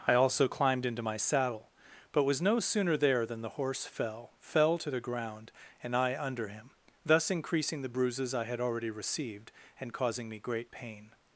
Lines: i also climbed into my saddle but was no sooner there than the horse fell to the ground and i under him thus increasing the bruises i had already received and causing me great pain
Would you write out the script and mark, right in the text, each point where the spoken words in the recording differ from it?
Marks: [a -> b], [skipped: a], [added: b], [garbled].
i also climbed into my saddle but was no sooner there than the horse fell [added: fell] to the ground and i under him thus increasing the bruises i had already received and causing me great pain